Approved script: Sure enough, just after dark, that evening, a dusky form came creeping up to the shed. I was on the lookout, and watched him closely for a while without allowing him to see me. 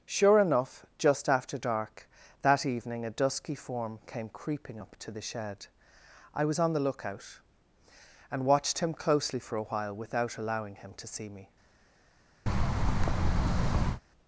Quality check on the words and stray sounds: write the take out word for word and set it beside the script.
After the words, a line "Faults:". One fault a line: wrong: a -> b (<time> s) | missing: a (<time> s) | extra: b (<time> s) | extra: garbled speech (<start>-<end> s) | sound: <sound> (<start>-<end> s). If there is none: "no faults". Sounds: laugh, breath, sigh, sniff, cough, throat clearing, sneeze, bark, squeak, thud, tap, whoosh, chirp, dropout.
Sure enough, just after dark, that evening, a dusky form came creeping up to the shed. I was on the lookout, and watched him closely for a while without allowing him to see me.
Faults:
sound: thud (12.5-14.0 s)